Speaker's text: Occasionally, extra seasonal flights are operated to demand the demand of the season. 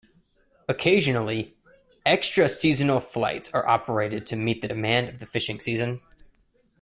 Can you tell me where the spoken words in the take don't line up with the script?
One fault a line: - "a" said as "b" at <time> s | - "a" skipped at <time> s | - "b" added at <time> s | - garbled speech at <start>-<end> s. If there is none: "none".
- "demand" said as "meet" at 4.3 s
- "fishing" added at 5.3 s